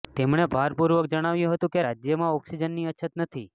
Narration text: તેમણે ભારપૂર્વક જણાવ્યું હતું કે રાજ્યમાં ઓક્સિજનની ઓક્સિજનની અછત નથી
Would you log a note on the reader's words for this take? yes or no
yes